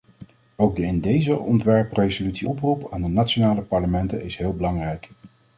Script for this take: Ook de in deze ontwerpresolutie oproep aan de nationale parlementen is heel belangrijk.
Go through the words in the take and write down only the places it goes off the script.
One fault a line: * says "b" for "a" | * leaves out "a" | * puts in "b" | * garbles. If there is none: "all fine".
all fine